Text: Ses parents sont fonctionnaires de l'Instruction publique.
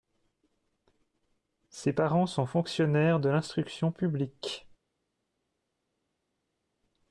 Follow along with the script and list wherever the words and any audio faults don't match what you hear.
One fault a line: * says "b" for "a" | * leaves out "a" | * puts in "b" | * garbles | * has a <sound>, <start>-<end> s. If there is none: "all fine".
all fine